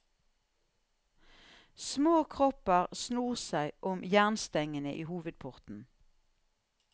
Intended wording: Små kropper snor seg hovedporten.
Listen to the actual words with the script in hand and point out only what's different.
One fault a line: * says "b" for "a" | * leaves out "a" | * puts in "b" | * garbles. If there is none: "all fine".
* puts in "om jernstengene i"